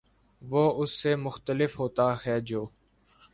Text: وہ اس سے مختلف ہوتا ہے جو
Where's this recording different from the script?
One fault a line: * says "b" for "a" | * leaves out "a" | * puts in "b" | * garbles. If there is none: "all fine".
all fine